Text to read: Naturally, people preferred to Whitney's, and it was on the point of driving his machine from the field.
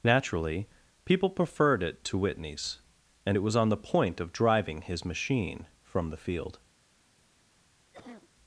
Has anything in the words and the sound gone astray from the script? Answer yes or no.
yes